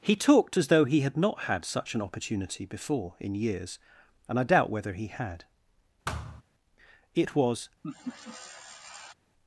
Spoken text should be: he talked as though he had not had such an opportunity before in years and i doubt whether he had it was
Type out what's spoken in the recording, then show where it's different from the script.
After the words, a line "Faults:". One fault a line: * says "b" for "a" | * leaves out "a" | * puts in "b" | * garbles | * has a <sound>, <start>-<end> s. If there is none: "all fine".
he talked as though he had not had such an opportunity before in years and i doubt whether he had it was
Faults:
* has a thud, 6.1-6.4 s
* has a laugh, 7.8-9.1 s